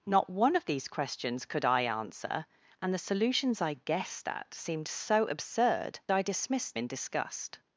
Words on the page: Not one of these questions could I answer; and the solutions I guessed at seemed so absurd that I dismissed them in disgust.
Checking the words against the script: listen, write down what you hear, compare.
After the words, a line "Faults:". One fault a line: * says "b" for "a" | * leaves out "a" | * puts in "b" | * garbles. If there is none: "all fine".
Not one of these questions could I answer; and the solutions I guessed at seemed so absurd I dismissed in disgust.
Faults:
* leaves out "that"
* leaves out "them"